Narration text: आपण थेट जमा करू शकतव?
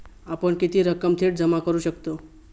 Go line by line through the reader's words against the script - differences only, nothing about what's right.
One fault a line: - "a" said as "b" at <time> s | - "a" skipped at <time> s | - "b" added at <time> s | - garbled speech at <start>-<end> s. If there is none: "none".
- "किती रक्कम" added at 0.6 s